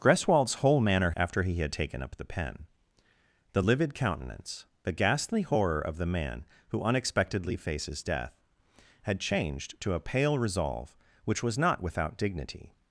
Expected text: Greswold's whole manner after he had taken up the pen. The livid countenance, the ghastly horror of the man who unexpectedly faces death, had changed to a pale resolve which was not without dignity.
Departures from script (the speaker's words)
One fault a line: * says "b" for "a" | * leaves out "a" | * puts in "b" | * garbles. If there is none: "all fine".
all fine